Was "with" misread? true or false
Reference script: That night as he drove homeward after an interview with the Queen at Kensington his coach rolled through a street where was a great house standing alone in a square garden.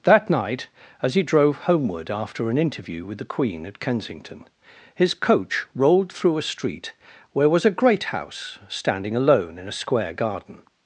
false